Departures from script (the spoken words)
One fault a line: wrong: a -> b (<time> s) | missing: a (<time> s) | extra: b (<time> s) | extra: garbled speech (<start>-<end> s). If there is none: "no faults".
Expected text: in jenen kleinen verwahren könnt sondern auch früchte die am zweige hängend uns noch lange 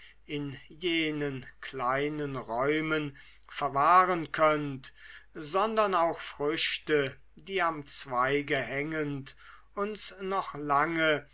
extra: räumen (2.4 s)